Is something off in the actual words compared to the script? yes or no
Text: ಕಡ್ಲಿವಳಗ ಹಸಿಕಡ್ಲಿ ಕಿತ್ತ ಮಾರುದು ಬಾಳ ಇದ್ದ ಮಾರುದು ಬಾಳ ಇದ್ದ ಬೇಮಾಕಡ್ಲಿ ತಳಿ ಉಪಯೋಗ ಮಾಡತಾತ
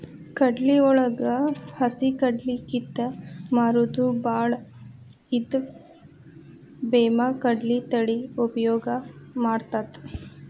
yes